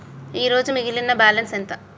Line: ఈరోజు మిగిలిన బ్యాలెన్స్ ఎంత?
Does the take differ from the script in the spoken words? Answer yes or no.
no